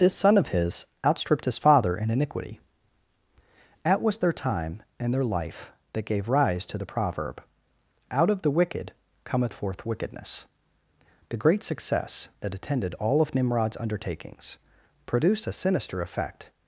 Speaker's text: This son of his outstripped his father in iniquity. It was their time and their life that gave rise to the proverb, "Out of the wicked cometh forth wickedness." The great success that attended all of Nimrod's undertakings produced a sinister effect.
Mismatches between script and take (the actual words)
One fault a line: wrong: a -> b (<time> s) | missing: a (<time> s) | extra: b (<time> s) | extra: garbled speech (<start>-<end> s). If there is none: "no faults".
wrong: It -> At (3.9 s)